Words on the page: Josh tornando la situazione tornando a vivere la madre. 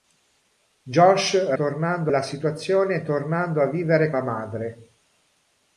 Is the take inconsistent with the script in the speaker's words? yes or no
no